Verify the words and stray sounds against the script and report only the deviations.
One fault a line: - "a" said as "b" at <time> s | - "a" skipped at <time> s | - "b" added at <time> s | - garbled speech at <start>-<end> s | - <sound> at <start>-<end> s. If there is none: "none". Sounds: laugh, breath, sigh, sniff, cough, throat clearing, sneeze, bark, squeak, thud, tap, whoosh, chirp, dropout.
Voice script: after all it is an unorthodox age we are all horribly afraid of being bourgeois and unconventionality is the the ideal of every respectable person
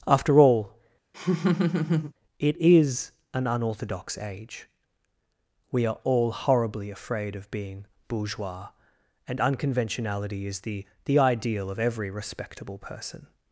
- laugh at 1.1-2.1 s